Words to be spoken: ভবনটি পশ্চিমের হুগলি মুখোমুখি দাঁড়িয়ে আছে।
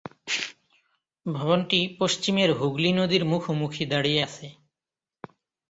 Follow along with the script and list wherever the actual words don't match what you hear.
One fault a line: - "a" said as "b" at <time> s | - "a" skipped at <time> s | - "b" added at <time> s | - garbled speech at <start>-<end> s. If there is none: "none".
- "নদীর" added at 2.9 s